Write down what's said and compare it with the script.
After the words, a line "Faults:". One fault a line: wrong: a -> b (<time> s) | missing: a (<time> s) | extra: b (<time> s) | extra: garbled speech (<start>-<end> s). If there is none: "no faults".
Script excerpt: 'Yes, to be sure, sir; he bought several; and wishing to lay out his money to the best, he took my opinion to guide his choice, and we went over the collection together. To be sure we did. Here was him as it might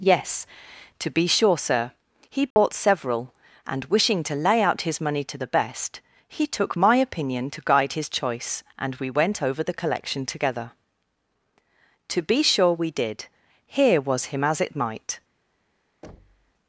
'Yes, to be sure, sir; he bought several; and wishing to lay out his money to the best, he took my opinion to guide his choice, and we went over the collection together. To be sure we did. Here was him as it might
Faults:
no faults